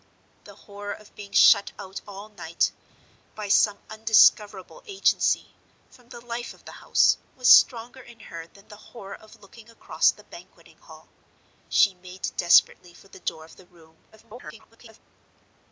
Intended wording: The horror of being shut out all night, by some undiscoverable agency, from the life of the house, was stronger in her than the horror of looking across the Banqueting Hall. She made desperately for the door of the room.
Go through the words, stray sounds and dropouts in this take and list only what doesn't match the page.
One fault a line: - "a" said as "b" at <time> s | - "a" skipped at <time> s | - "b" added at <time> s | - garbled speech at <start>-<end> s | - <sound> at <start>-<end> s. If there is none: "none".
- garbled speech at 14.1-15.0 s